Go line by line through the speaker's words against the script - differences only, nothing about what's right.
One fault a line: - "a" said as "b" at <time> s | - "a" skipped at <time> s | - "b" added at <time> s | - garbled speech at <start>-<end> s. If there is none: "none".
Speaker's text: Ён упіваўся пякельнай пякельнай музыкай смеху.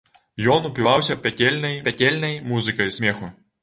none